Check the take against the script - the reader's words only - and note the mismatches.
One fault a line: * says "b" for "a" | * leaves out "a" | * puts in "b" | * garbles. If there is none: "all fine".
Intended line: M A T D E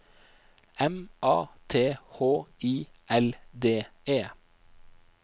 * puts in "H I L"